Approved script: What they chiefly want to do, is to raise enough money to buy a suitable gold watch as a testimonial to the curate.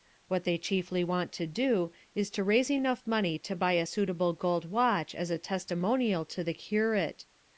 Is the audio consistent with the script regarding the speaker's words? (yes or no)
yes